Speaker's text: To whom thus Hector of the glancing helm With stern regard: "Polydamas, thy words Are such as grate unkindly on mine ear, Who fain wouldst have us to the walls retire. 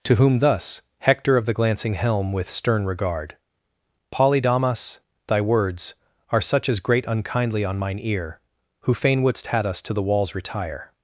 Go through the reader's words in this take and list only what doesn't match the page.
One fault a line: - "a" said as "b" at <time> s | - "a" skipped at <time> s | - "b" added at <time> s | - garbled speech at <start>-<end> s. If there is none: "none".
- "have" said as "had" at 9.5 s